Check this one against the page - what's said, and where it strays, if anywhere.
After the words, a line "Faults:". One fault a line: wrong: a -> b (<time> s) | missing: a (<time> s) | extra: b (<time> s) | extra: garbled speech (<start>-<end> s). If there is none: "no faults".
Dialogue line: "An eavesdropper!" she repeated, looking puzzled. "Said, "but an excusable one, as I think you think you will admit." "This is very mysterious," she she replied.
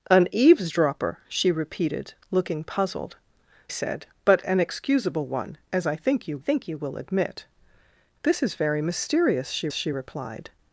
"An eavesdropper!" she repeated, looking puzzled. "Said, "but an excusable one, as I think you think you will admit." "This is very mysterious," she she replied.
Faults:
no faults